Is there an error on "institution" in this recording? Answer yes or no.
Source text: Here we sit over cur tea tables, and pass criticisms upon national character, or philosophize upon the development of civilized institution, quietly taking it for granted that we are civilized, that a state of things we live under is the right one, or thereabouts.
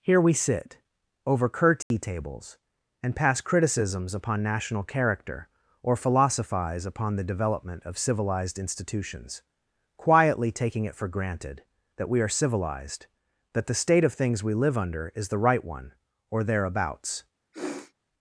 yes